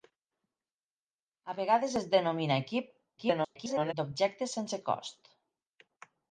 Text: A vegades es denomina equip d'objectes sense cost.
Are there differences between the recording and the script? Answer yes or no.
yes